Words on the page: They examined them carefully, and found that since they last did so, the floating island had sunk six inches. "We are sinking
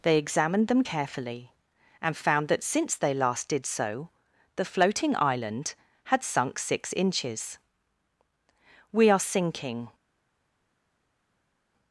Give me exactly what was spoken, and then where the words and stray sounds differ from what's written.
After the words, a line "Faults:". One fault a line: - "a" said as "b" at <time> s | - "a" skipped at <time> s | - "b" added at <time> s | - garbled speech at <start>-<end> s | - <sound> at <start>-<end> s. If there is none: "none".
They examined them carefully, and found that since they last did so, the floating island had sunk six inches. "We are sinking
Faults:
none